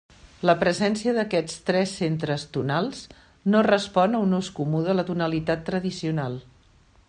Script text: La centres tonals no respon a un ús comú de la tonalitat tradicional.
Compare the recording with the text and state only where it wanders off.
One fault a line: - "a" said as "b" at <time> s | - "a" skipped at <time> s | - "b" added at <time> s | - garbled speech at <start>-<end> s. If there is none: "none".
- "presència d'aquests tres" added at 0.6 s